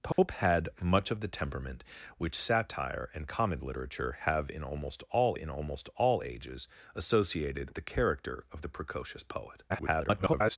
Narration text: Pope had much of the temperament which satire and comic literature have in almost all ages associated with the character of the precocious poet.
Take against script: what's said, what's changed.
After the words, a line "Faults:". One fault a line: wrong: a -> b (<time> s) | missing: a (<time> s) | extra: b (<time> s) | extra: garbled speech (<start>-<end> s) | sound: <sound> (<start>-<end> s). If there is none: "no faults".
Pope had much of the temperament which satire and comic literature have in almost all in almost all ages associated the character of the precocious poet. [garbled]
Faults:
sound: dropout (0.1-0.2 s)
extra: in almost all (5.4 s)
missing: with (7.7 s)
extra: garbled speech (9.7-10.6 s)